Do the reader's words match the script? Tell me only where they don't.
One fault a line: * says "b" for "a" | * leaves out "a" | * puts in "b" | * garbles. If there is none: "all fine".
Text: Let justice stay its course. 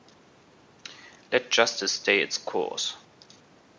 all fine